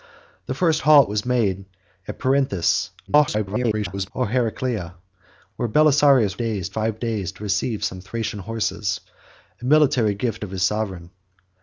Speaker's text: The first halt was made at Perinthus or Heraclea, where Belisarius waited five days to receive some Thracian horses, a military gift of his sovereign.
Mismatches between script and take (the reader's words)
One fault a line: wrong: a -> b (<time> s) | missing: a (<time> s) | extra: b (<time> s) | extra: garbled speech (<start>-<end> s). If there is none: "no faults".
extra: garbled speech (3.1-4.1 s)
wrong: waited -> days (6.3 s)